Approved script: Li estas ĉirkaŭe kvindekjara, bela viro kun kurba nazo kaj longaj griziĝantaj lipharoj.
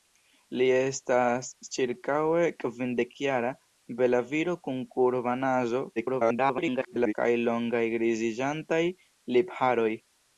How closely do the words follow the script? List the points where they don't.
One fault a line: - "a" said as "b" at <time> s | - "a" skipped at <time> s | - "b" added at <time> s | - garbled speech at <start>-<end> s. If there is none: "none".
- garbled speech at 6.0-7.1 s